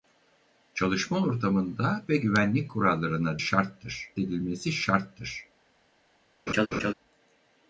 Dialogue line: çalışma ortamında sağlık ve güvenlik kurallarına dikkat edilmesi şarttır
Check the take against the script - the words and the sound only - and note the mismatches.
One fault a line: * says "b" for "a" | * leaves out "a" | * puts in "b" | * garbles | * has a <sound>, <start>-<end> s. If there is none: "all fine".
* leaves out "sağlık"
* says "şarttır" for "dikkat"
* has a laugh, 6.5-6.9 s